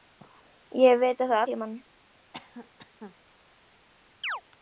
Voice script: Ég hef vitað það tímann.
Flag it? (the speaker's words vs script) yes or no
no